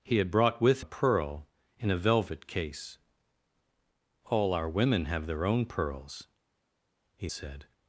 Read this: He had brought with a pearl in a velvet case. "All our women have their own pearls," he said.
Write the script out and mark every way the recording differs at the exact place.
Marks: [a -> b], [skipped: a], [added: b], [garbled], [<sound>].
He had brought with a pearl in a velvet case. "All our women have their own pearls," he said.